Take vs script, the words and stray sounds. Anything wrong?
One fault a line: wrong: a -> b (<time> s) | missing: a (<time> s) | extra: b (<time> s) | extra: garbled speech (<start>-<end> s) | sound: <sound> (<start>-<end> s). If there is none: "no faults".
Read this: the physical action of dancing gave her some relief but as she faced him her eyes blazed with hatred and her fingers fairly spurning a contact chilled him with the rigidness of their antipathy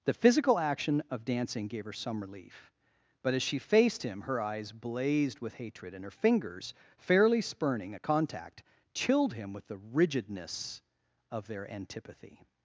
no faults